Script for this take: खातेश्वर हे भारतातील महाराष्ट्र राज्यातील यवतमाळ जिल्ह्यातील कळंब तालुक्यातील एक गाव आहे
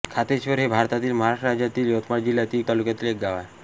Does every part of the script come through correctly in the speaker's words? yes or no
no